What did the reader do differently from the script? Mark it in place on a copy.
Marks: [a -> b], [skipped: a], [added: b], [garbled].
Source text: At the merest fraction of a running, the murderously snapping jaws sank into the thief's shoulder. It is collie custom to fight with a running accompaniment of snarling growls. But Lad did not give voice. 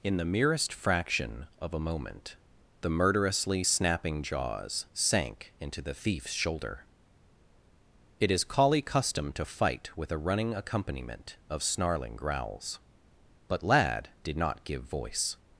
[At -> In] the merest fraction of a [running, -> moment] the murderously snapping jaws sank into the thief's shoulder. It is collie custom to fight with a running accompaniment of snarling growls. But Lad did not give voice.